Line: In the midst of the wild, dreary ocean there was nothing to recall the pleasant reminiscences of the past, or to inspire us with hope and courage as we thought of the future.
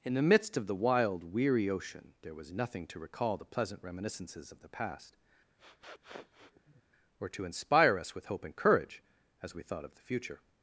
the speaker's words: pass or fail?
fail